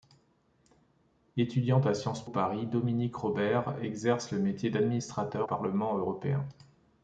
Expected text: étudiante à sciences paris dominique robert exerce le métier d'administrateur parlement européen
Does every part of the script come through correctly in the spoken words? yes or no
yes